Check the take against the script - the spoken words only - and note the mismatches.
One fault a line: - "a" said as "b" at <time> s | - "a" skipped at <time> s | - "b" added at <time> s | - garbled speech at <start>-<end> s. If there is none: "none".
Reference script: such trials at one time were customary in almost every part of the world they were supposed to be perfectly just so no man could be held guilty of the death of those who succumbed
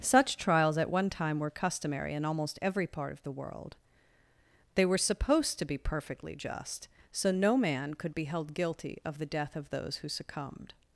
none